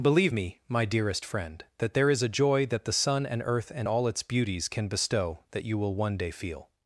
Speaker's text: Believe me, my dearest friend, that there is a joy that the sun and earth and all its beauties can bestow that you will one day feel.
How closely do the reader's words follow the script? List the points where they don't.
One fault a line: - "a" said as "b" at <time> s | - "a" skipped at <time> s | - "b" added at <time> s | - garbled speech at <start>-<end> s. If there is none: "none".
none